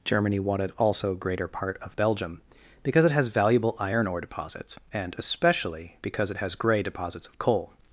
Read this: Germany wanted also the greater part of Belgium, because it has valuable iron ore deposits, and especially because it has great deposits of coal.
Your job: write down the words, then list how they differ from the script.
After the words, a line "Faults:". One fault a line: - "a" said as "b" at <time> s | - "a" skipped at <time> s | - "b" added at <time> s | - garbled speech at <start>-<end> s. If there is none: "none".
Germany wanted also greater part of Belgium, because it has valuable iron ore deposits, and especially because it has grey deposits of coal.
Faults:
- "the" skipped at 1.1 s
- "great" said as "grey" at 6.5 s